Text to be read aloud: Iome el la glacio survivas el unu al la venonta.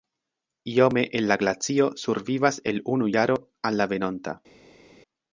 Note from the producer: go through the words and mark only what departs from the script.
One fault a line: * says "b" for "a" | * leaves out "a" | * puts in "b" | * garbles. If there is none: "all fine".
* puts in "jaro"